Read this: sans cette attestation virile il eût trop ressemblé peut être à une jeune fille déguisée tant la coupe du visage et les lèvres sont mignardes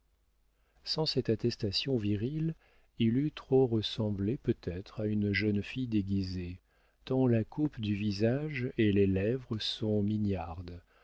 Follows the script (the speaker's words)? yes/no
yes